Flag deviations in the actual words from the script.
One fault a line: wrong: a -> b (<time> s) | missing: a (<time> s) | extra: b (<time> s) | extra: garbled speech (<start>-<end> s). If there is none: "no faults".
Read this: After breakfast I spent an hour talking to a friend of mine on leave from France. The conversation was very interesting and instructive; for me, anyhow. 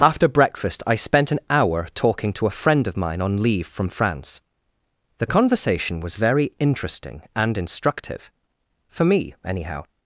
no faults